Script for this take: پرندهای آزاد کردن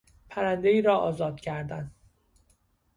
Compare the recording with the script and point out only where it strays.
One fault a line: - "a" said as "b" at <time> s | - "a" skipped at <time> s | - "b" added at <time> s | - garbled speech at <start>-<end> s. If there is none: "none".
- "را" added at 0.8 s